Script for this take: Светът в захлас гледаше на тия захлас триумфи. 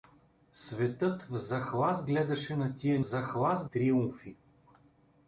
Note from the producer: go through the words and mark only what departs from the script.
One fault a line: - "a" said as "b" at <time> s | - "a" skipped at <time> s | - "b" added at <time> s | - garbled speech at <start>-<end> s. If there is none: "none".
none